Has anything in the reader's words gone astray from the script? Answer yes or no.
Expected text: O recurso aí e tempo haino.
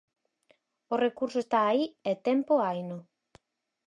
yes